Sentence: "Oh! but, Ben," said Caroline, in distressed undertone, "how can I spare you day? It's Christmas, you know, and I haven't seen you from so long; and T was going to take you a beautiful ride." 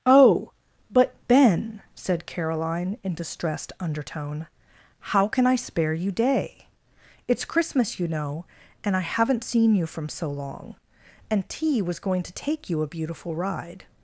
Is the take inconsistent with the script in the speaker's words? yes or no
no